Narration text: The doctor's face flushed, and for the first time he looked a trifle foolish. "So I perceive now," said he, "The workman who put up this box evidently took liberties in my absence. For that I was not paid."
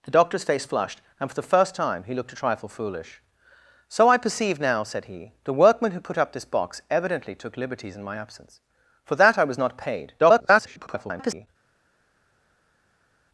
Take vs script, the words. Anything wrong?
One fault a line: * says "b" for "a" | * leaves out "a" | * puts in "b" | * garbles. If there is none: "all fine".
* garbles